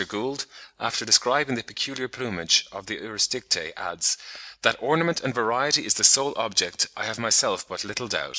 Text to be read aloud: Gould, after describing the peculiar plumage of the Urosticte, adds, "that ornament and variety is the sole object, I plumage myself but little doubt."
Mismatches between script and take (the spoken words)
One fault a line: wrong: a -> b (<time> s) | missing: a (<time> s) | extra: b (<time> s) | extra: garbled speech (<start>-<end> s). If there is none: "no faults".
wrong: plumage -> have (7.0 s)